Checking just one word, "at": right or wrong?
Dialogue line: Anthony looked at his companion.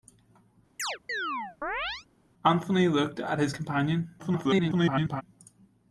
right